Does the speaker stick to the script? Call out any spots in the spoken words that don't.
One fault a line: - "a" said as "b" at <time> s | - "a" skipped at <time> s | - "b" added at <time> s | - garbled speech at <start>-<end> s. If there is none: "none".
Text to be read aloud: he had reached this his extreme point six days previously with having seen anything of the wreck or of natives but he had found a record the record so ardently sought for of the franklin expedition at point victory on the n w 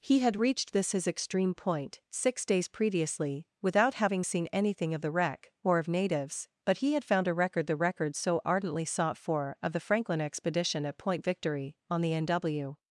- "with" said as "without" at 3.6 s